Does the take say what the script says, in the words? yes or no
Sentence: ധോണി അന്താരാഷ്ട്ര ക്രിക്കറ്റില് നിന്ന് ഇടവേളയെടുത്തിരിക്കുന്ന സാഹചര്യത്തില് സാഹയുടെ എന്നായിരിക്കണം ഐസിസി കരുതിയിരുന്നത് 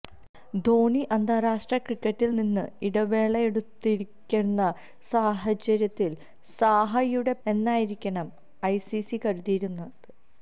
yes